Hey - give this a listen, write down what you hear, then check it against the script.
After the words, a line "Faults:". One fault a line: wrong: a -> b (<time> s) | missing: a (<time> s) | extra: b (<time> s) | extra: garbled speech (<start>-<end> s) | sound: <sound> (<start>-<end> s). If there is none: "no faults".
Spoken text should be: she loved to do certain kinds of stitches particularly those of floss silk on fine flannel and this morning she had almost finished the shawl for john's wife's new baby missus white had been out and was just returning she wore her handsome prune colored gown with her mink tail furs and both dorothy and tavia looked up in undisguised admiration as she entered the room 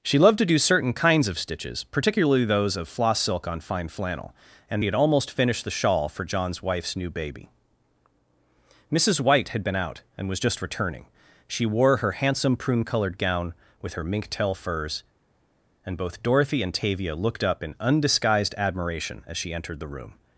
she loved to do certain kinds of stitches particularly those of floss silk on fine flannel and had almost finished the shawl for john's wife's new baby missus white had been out and was just returning she wore her handsome prune colored gown with her mink tail furs and both dorothy and tavia looked up in undisguised admiration as she entered the room
Faults:
missing: this morning she (4.8 s)